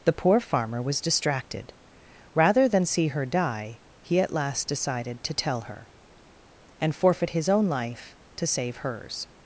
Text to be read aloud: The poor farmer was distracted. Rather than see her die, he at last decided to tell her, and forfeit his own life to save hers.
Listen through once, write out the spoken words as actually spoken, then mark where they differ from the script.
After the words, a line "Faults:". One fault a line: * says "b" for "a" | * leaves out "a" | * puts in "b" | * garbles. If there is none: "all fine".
The poor farmer was distracted. Rather than see her die, he at last decided to tell her, and forfeit his own life to save hers.
Faults:
all fine